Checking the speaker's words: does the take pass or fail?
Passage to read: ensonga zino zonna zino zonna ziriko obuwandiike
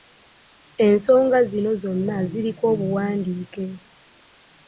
fail